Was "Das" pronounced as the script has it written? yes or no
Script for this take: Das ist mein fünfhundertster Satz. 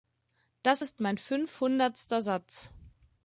yes